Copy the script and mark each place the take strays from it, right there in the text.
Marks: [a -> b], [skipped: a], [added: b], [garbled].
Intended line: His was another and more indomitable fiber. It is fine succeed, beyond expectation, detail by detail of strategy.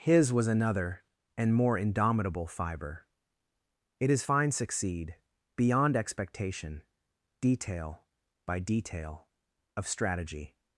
His was another and more indomitable fiber. It is fine succeed, beyond expectation, detail by detail of strategy.